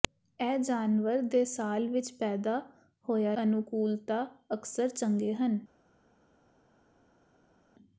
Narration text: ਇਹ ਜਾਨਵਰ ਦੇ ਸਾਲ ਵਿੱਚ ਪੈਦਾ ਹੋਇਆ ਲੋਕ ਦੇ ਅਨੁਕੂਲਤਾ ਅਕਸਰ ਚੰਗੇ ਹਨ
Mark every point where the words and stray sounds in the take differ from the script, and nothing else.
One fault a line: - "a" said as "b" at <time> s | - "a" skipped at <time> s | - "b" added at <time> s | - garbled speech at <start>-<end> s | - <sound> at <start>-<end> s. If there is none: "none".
- "ਲੋਕ ਦੇ" skipped at 3.4 s